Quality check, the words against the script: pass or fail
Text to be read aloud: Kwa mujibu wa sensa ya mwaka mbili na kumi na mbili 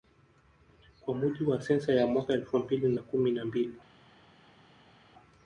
fail